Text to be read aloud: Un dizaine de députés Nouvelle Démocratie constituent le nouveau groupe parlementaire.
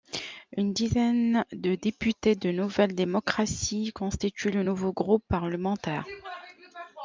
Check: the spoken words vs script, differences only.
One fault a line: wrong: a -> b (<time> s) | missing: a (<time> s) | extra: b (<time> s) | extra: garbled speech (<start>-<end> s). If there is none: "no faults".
wrong: Un -> Une (0.6 s)
extra: de (2.4 s)